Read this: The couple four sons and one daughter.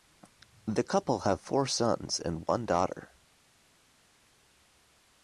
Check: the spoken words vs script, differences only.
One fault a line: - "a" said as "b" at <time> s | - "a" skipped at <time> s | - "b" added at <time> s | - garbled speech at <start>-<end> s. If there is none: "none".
- "have" added at 1.2 s